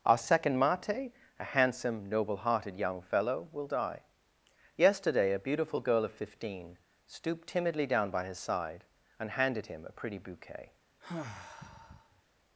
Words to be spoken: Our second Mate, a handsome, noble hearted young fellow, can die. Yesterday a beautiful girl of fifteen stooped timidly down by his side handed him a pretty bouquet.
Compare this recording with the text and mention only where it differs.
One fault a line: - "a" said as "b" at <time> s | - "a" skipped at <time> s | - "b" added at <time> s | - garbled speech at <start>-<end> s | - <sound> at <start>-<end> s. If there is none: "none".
- "can" said as "will" at 3.5 s
- "and" added at 9.2 s
- sigh at 11.0-12.2 s